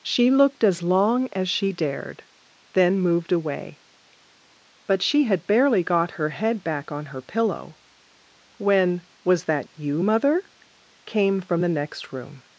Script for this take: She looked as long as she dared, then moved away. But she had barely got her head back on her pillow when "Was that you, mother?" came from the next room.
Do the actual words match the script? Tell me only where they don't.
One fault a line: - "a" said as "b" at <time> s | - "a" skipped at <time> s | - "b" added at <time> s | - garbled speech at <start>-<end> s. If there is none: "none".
none